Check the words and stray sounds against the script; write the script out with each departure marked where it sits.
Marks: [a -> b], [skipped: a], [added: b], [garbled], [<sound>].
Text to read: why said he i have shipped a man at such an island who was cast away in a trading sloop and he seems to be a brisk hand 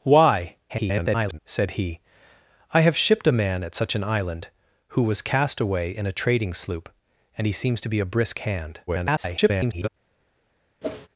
why [garbled] said he i have shipped a man at such an island who was cast away in a trading sloop and he seems to be a brisk hand [garbled] [whoosh]